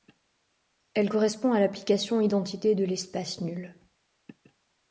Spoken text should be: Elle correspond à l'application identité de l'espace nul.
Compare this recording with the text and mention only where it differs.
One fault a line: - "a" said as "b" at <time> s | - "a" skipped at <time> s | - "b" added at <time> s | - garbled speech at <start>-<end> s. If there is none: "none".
none